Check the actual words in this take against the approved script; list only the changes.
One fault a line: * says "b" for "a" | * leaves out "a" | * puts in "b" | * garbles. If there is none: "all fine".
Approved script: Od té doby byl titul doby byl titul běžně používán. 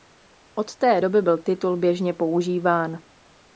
* leaves out "doby byl titul"